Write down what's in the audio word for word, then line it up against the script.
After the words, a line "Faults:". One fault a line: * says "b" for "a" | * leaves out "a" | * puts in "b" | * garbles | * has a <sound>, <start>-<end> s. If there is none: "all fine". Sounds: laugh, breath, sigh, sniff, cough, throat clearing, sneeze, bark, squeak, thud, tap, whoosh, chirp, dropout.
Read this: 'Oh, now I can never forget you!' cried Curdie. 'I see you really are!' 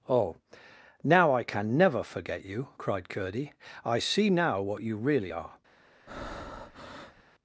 'Oh, now I can never forget you!' cried Curdie. 'I see now what you really are!'
Faults:
* puts in "now what"
* has a breath, 6.1-7.2 s